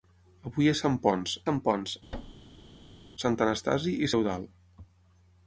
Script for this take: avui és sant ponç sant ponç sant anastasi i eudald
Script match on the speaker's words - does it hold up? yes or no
yes